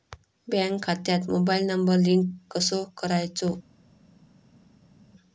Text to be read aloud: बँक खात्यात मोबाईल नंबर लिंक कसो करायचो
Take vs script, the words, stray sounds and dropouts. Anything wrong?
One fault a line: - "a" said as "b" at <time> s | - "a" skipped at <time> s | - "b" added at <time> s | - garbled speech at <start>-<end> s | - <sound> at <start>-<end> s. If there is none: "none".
none